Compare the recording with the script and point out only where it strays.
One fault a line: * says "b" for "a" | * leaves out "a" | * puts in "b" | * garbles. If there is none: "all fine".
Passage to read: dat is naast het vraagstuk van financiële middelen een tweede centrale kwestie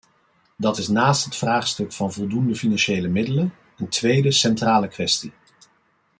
* puts in "voldoende"